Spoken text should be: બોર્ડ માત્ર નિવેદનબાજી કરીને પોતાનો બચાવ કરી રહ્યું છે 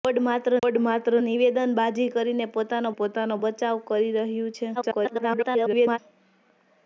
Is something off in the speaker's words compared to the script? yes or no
yes